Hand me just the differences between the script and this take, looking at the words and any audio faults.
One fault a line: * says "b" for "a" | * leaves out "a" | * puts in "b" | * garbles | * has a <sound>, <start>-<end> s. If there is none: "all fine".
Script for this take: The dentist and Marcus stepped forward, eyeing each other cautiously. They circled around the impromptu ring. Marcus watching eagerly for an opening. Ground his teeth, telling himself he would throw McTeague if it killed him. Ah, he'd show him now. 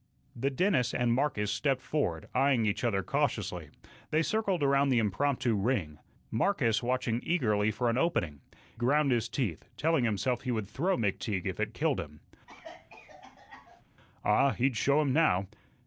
* has a cough, 12.5-13.8 s